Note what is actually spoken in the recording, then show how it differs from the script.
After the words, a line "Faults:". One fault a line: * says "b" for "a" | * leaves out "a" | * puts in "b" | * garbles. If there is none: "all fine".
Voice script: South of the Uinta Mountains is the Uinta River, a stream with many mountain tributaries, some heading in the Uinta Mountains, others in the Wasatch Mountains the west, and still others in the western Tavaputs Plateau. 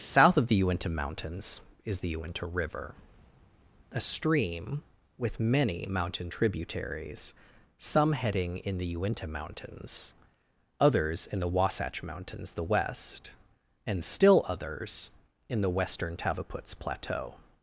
South of the Uinta Mountains is the Uinta River, a stream with many mountain tributaries, some heading in the Uinta Mountains, others in the Wasatch Mountains the west, and still others in the western Tavaputs Plateau.
Faults:
all fine